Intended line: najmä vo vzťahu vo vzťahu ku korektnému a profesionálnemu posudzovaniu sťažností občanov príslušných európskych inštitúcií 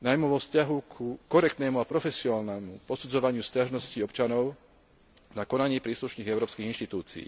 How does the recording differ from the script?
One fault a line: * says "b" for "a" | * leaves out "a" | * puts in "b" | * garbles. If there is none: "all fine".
* leaves out "vo vzťahu"
* puts in "na konanie"